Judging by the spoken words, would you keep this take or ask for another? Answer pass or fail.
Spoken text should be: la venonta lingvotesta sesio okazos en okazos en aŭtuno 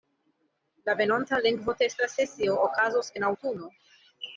fail